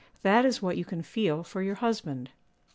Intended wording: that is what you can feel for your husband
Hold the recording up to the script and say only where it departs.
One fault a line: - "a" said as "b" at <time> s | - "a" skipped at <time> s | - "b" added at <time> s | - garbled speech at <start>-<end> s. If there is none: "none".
none